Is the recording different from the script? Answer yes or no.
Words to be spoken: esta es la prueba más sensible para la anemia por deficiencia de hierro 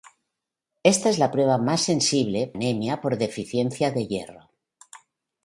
yes